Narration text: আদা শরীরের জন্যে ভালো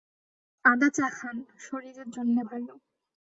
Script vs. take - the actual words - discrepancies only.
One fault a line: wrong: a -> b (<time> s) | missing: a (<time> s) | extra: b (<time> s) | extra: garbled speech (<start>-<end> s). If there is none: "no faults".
extra: চা খান (0.9 s)